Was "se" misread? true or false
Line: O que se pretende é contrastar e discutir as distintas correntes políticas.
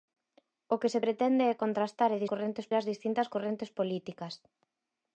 false